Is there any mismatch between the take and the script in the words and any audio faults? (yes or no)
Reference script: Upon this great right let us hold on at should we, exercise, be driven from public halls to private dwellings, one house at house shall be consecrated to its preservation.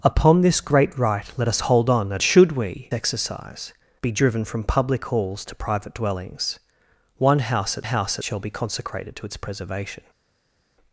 no